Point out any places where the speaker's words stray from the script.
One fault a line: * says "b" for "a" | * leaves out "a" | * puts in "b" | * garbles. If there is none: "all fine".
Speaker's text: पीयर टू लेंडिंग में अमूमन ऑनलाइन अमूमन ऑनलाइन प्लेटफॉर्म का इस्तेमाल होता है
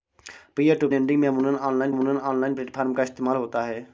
all fine